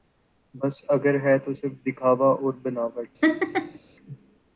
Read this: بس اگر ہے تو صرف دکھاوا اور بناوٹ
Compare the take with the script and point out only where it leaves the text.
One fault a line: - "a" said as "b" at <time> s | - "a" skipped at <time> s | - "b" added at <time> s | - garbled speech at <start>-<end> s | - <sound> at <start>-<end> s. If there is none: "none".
- laugh at 3.2-3.8 s